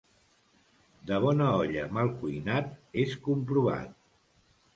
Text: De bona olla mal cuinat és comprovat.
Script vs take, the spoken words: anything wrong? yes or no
no